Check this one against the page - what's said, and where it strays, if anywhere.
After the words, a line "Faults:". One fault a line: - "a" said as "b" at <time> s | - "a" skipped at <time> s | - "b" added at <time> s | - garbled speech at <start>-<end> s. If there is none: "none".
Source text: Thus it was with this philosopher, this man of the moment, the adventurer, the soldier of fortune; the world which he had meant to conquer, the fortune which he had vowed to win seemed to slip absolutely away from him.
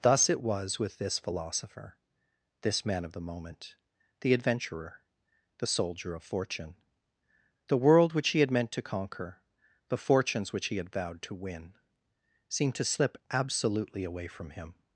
Thus it was with this philosopher, this man of the moment, the adventurer, the soldier of fortune; the world which he had meant to conquer, the fortunes which he had vowed to win seemed to slip absolutely away from him.
Faults:
- "fortune" said as "fortunes" at 10.0 s